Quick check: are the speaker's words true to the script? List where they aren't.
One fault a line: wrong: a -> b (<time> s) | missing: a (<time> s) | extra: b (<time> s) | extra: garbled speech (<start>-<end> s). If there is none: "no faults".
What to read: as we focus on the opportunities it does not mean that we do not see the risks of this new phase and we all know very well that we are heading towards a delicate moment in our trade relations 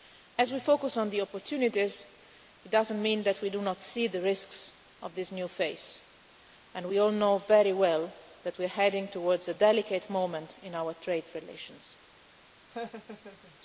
no faults